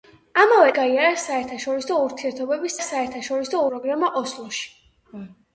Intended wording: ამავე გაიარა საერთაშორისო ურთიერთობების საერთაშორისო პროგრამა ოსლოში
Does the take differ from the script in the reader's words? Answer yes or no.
no